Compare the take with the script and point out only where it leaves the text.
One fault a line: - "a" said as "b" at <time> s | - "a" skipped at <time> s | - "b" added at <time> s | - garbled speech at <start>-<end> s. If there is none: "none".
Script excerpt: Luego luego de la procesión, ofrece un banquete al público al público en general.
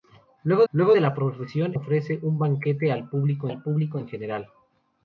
none